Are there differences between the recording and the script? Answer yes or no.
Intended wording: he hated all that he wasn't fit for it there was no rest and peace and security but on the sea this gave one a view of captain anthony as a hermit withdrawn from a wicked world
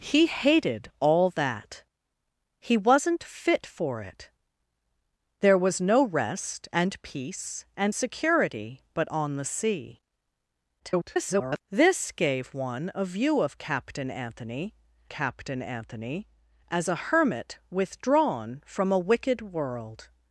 yes